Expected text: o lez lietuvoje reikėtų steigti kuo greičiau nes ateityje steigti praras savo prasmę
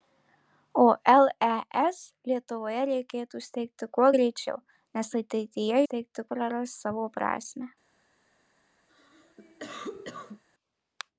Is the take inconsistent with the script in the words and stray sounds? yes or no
yes